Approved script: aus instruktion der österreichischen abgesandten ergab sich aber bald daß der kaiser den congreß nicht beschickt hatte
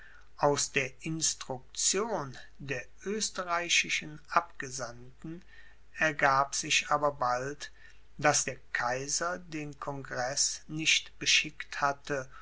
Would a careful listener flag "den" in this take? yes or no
no